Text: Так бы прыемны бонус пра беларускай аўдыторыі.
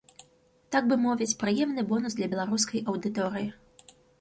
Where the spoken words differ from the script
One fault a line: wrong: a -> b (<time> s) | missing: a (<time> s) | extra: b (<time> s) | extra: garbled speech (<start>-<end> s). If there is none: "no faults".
extra: мовіць (1.0 s)
wrong: пра -> для (2.2 s)